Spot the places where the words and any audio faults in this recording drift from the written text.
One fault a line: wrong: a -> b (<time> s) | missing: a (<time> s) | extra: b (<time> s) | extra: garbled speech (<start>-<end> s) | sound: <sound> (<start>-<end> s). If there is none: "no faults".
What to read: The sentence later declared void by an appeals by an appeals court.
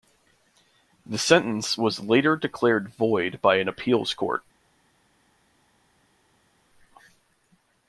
extra: was (1.8 s)
missing: by an appeals (4.1 s)